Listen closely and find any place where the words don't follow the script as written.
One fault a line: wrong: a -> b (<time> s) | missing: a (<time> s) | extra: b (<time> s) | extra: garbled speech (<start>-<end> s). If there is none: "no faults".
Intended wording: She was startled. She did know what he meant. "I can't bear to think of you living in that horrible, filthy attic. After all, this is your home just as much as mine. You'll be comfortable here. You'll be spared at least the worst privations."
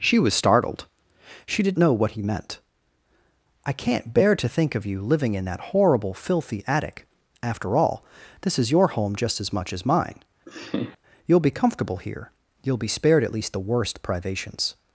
no faults